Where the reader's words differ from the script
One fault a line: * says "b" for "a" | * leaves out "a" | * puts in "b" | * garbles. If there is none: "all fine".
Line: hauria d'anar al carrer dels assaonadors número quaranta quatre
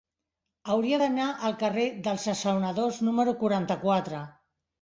all fine